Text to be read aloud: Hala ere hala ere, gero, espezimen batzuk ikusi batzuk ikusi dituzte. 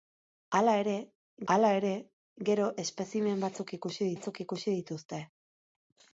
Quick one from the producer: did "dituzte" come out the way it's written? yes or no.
yes